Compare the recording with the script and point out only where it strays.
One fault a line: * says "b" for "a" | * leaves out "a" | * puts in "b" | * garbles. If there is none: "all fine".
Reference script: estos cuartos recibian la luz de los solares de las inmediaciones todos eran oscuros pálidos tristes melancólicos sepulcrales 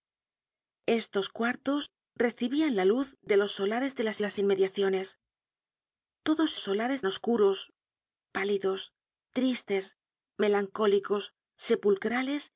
* puts in "las"
* says "solares" for "eran"